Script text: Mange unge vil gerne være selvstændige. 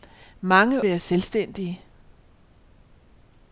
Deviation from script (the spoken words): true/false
true